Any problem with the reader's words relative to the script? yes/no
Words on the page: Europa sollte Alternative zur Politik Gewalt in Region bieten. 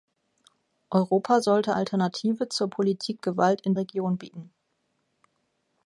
no